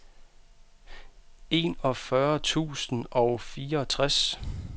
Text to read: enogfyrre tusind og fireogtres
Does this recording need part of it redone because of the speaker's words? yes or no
no